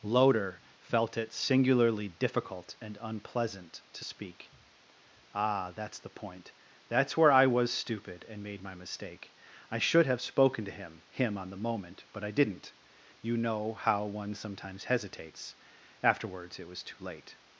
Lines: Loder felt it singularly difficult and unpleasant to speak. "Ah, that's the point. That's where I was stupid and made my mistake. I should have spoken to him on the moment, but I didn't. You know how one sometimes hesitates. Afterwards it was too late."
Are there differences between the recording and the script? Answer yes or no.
yes